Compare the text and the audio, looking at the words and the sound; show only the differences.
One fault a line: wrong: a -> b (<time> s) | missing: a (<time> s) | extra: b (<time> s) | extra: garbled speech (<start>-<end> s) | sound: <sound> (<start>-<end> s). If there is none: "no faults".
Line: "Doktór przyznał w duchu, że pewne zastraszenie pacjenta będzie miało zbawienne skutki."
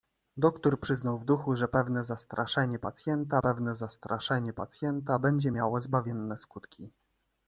extra: pewne zastraszenie pacjenta (3.4 s)